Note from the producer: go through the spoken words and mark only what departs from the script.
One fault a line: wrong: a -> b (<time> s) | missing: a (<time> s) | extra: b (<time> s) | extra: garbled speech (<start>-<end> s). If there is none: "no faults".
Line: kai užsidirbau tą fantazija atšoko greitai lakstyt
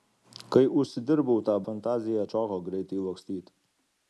no faults